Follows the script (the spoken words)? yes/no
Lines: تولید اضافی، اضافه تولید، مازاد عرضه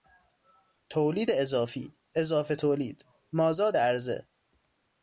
yes